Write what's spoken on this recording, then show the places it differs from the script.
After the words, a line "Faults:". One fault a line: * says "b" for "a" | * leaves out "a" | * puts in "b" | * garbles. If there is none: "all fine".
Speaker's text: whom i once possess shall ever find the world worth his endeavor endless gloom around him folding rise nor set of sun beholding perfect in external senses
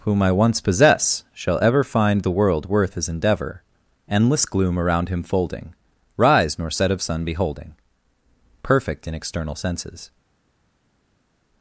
whom i once possess shall ever find the world worth his endeavor endless gloom around him folding rise nor set of sun beholding perfect in external senses
Faults:
all fine